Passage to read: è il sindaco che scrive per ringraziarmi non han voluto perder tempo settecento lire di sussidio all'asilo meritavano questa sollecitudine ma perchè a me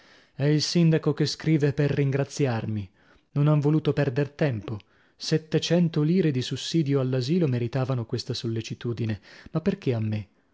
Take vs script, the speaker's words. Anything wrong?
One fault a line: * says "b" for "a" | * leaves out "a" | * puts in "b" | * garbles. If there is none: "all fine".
all fine